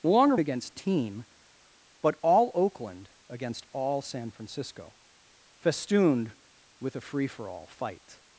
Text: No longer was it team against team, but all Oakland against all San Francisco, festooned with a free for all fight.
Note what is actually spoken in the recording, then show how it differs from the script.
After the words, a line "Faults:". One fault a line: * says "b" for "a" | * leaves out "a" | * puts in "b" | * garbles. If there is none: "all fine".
No longer against team, but all Oakland against all San Francisco, festooned with a free for all fight.
Faults:
* leaves out "was it team"